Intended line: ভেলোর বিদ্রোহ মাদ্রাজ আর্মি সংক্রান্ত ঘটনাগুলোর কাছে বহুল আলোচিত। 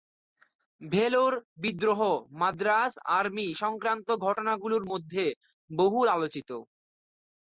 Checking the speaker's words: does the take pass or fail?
fail